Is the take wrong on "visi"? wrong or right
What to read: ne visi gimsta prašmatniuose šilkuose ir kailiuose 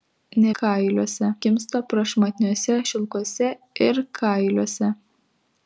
wrong